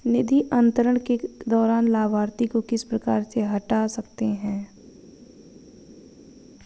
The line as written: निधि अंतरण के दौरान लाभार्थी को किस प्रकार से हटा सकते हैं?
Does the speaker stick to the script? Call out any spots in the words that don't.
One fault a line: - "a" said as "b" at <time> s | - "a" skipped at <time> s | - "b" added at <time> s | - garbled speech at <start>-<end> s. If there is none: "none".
none